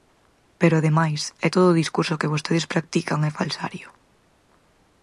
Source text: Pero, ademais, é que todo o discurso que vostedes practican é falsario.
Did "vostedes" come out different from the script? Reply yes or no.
no